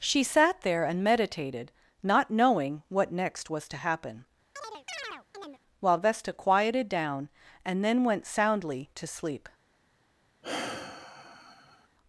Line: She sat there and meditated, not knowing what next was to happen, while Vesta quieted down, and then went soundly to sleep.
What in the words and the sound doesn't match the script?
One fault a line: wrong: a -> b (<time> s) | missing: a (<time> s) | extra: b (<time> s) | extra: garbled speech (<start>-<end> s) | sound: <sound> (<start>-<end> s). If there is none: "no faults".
sound: chirp (4.6-5.6 s)
sound: sigh (10.4-11.9 s)